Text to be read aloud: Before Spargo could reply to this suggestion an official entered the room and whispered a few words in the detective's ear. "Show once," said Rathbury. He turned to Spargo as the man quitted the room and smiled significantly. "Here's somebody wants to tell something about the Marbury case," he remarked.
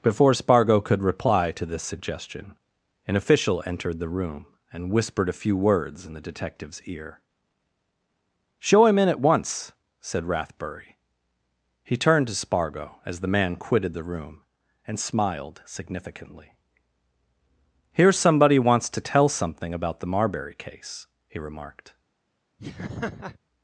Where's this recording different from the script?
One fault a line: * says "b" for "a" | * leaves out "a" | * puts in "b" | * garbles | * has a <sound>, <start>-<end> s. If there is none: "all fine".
* puts in "him in at"
* has a laugh, 22.6-23.4 s